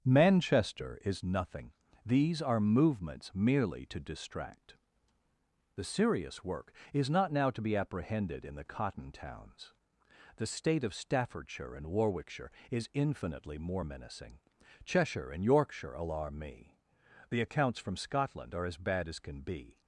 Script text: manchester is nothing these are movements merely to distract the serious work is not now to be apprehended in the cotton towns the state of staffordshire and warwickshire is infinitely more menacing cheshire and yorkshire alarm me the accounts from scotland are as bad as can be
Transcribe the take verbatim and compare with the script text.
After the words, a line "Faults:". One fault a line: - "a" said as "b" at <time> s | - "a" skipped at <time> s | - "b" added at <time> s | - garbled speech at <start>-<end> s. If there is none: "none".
manchester is nothing these are movements merely to distract the serious work is not now to be apprehended in the cotton towns the state of staffordshire and warwickshire is infinitely more menacing cheshire and yorkshire alarm me the accounts from scotland are as bad as can be
Faults:
none